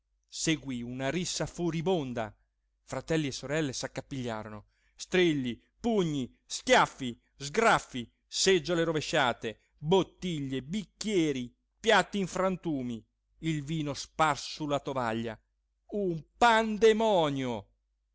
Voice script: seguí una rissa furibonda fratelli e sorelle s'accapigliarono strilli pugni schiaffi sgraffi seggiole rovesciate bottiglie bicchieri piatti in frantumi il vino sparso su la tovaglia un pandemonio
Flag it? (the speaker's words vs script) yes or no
no